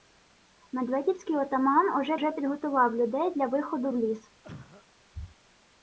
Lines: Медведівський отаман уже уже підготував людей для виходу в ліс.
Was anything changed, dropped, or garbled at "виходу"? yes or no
no